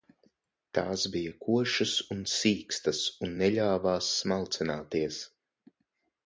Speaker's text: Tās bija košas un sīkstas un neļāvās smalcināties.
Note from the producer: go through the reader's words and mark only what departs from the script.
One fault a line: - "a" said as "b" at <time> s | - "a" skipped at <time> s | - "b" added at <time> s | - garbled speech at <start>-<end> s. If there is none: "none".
none